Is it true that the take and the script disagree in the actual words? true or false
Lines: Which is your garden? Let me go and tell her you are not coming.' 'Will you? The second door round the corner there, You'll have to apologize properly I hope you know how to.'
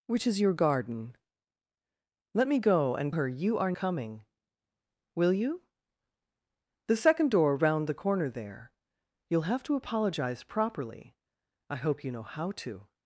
true